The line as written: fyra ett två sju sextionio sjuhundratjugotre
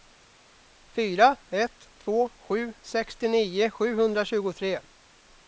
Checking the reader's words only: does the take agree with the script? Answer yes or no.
yes